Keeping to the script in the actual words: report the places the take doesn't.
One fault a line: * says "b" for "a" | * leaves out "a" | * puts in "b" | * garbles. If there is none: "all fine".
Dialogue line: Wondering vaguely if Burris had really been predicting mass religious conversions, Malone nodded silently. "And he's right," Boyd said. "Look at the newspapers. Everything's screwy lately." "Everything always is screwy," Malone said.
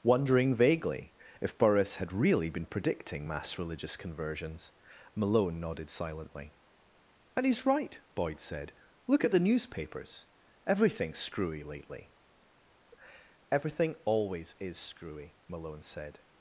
all fine